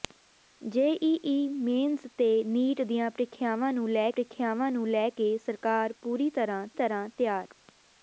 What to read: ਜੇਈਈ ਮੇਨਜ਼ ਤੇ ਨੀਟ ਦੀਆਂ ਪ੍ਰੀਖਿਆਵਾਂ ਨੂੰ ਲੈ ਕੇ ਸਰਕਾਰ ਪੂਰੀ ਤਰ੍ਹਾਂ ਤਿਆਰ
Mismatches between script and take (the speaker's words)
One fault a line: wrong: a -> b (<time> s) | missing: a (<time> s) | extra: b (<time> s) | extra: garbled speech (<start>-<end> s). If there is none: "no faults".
extra: ਪ੍ਰੀਖਿਆਵਾਂ ਨੂੰ ਲੈ (4.1 s)
extra: ਤਰ੍ਹਾਂ (6.7 s)